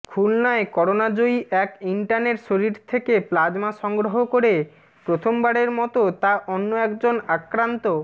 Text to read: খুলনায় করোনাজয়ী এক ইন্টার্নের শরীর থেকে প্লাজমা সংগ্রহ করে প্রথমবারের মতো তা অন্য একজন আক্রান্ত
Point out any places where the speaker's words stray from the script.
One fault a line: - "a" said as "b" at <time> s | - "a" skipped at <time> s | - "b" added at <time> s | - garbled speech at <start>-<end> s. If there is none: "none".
none